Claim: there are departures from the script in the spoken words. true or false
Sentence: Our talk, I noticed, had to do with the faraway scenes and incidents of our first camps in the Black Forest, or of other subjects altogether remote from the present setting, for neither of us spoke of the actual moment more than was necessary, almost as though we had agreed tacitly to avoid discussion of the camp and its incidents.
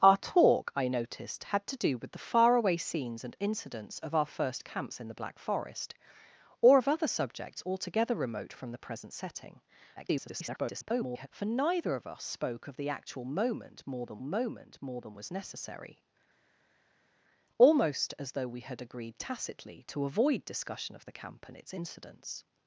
true